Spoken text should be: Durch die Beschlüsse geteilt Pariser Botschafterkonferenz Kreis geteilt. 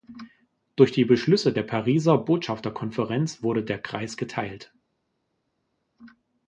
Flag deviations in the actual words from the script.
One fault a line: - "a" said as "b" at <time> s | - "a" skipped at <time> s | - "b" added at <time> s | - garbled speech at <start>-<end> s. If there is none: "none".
- "geteilt" said as "der" at 1.5 s
- "wurde der" added at 3.4 s